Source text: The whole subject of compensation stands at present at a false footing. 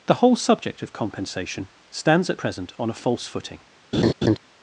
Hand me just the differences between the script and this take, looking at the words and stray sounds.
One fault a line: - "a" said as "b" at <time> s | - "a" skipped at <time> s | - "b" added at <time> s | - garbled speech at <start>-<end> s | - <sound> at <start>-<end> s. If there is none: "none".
- "at" said as "on" at 2.8 s
- laugh at 3.9-4.4 s